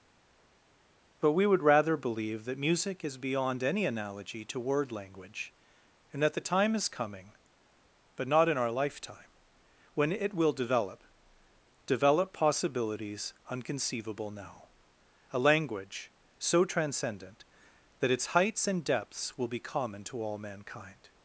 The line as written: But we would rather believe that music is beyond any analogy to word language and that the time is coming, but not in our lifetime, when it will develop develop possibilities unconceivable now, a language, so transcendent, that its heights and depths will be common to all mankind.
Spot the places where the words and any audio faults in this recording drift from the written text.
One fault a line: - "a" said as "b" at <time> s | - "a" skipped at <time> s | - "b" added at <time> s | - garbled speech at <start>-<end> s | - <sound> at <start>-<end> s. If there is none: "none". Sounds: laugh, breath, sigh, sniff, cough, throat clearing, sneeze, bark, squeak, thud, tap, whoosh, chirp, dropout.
none